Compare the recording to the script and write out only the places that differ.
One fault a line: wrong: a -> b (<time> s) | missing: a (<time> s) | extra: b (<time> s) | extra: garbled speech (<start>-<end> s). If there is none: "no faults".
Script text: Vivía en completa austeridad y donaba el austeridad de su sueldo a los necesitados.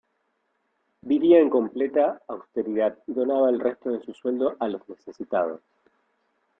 wrong: austeridad -> resto (3.6 s)